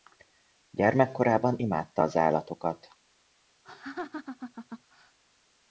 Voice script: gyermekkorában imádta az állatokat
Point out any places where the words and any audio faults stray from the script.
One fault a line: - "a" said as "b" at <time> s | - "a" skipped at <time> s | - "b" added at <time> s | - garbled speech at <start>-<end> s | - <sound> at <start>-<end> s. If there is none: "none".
- laugh at 3.6-5.2 s